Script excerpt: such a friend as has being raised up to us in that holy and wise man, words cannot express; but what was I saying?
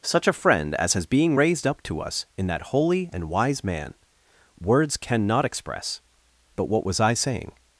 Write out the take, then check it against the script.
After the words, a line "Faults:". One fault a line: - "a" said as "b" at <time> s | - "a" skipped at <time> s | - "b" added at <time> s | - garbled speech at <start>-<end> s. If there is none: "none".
such a friend as has being raised up to us in that holy and wise man, words cannot express; but what was I saying?
Faults:
none